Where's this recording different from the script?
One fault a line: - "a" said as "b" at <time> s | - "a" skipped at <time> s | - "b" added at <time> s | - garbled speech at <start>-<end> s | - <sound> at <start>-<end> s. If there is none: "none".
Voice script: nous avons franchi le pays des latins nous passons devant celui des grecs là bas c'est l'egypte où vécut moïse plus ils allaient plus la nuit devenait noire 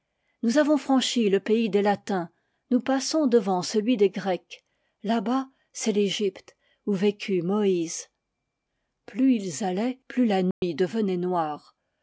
- dropout at 10.5-10.6 s